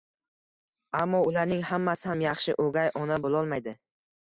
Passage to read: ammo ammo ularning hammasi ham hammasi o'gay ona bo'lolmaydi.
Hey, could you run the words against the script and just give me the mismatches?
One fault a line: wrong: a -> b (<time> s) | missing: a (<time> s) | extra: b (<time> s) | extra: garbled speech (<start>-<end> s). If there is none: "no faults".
missing: ammo (1.2 s)
wrong: hammasi -> yaxshi (2.3 s)